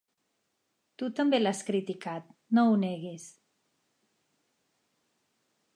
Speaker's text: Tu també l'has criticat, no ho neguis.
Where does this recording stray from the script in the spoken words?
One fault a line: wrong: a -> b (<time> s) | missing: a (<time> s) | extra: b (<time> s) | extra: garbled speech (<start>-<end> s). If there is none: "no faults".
no faults